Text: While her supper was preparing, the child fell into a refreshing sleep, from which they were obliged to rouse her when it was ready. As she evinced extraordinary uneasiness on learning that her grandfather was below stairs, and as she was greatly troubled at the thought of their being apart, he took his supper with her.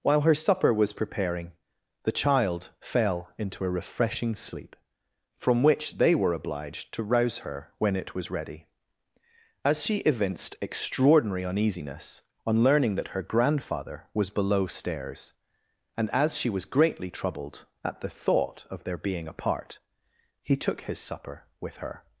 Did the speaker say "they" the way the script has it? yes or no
yes